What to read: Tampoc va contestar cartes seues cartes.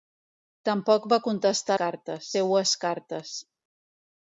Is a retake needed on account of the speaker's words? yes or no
no